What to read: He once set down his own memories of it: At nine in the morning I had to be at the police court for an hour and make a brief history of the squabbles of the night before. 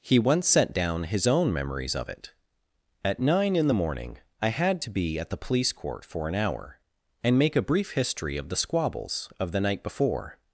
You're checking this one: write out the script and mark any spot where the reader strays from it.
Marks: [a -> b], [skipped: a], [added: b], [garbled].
He once set down his own memories of it: At nine in the morning I had to be at the police court for an hour and make a brief history of the squabbles of the night before.